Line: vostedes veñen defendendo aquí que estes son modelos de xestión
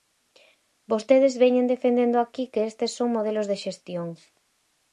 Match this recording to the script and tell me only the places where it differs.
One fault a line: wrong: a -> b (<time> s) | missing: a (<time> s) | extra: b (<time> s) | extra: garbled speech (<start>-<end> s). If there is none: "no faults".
no faults